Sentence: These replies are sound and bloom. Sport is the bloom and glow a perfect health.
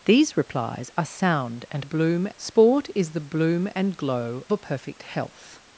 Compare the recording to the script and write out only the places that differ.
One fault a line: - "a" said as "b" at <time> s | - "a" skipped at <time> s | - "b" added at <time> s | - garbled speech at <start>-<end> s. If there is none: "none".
none